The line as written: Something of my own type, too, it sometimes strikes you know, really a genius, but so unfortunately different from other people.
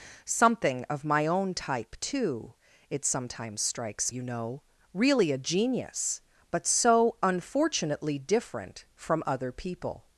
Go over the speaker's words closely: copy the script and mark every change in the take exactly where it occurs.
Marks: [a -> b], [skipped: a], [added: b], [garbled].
Something of my own type, too, it sometimes strikes you know, really a genius, but so unfortunately different from other people.